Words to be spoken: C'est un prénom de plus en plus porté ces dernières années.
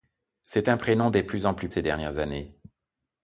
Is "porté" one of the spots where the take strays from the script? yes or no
yes